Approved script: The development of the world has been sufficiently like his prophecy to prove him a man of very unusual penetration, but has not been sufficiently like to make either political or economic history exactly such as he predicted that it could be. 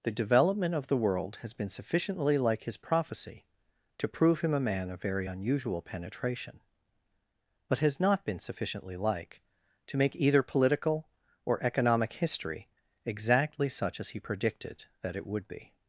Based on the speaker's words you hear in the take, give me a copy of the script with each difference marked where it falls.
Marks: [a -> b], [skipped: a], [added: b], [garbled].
The development of the world has been sufficiently like his prophecy to prove him a man of very unusual penetration, but has not been sufficiently like to make either political or economic history exactly such as he predicted that it [could -> would] be.